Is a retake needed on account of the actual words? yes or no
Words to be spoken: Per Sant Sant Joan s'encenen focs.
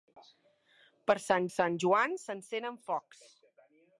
no